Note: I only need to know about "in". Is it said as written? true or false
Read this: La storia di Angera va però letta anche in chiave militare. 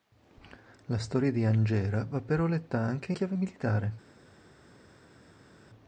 false